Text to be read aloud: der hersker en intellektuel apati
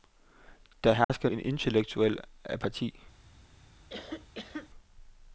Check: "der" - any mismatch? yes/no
no